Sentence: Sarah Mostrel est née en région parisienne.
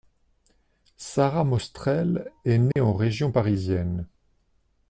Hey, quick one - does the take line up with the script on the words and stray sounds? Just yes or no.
no